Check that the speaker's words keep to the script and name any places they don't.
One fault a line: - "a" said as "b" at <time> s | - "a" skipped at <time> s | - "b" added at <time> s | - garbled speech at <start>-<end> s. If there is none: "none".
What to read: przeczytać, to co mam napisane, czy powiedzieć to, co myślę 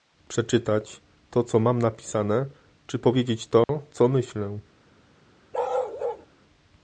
none